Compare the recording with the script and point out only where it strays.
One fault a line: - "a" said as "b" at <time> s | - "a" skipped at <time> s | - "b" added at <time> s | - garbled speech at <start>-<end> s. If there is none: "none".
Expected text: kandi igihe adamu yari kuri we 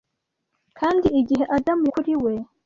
- "yari" skipped at 1.8 s